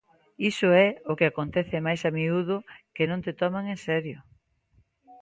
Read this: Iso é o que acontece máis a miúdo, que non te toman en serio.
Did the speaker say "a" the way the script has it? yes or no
yes